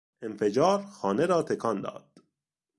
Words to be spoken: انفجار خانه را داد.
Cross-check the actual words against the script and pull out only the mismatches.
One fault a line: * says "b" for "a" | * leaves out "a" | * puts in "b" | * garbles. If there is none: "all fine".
* puts in "تکان"